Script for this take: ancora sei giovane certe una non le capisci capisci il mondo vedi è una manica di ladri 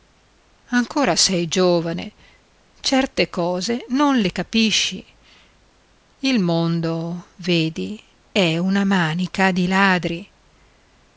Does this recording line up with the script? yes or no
no